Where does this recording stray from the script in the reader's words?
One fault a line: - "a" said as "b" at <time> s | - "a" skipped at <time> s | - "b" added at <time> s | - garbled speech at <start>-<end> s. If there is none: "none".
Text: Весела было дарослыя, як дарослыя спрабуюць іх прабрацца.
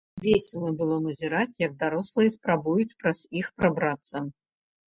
- "дарослыя" said as "назіраць" at 1.1 s
- "праз" added at 3.1 s